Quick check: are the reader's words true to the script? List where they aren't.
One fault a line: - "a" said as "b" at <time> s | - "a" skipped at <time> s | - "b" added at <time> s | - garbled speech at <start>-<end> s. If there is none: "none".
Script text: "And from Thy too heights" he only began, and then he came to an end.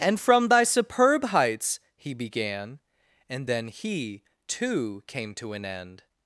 - "too" said as "superb" at 0.6 s
- "only" skipped at 2.1 s
- "too" added at 4.5 s